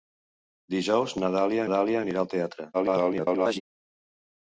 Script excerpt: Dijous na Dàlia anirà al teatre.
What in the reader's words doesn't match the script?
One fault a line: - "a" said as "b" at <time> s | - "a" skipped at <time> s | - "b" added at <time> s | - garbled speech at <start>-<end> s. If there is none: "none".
- "Dàlia" added at 1.7 s
- garbled speech at 2.7-3.6 s